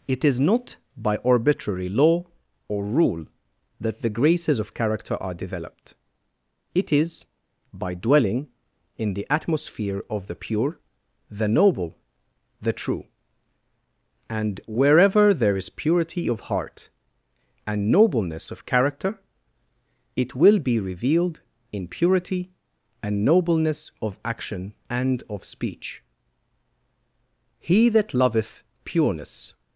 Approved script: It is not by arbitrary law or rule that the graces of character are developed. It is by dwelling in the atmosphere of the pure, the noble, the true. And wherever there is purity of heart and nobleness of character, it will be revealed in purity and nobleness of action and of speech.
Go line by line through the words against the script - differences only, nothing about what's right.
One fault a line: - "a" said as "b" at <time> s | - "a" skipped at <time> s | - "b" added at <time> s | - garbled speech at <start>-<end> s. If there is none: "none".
- "He that loveth pureness" added at 27.6 s